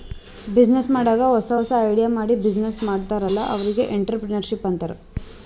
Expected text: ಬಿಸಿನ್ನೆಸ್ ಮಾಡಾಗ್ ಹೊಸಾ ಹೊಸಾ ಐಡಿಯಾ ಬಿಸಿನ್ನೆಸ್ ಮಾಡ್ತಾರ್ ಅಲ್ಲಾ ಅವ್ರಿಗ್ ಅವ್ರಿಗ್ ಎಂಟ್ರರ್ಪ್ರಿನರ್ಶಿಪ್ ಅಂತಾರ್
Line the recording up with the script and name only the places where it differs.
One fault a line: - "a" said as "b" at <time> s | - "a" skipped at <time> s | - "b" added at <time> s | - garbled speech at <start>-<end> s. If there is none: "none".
- "ಮಾಡಿ" added at 2.1 s
- "ಅವ್ರಿಗ್" skipped at 3.8 s